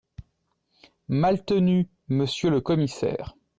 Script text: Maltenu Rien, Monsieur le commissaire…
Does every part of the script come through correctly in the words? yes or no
no